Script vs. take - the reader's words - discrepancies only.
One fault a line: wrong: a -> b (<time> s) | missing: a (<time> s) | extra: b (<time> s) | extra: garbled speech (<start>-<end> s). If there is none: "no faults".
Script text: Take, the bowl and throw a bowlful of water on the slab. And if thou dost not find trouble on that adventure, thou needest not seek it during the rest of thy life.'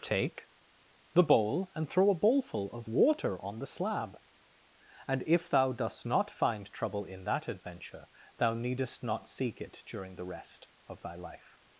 wrong: on -> in (7.0 s)